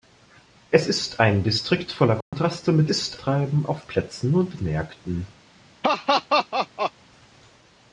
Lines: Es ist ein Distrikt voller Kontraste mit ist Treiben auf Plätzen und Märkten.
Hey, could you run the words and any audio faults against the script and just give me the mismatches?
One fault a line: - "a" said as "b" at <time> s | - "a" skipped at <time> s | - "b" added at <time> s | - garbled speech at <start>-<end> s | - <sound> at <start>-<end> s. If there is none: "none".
- dropout at 2.2-2.3 s
- laugh at 5.8-6.9 s